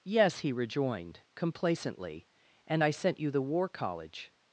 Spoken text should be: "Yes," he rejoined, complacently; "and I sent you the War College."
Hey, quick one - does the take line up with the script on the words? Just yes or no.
yes